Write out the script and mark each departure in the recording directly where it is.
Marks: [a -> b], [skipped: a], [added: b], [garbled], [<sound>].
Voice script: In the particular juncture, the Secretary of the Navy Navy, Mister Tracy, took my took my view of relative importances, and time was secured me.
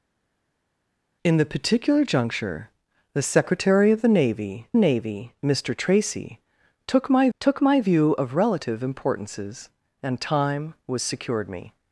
In the particular juncture, the Secretary of the Navy Navy, Mister Tracy, took my took my view of relative importances, and time was secured me.